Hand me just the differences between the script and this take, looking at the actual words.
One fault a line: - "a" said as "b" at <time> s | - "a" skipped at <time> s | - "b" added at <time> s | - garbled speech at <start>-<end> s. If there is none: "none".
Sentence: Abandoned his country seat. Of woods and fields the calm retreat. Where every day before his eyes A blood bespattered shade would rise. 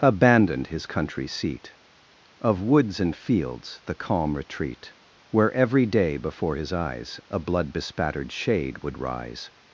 none